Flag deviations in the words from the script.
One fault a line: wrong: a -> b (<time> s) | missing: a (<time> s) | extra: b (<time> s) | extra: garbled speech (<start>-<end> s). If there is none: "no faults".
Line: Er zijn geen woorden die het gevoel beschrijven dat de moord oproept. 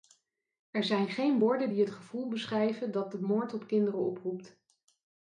extra: op kinderen (3.5 s)